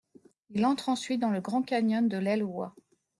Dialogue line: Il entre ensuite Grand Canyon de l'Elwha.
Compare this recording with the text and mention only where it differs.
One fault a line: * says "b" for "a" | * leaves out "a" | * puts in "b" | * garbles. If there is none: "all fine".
* puts in "dans le"